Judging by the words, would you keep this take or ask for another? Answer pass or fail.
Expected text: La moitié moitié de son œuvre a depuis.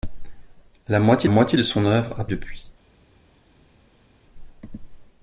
pass